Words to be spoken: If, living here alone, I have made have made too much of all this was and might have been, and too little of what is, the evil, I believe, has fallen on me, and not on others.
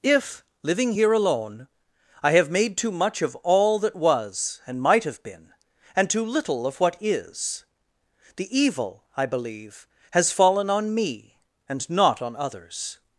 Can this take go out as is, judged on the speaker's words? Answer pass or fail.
fail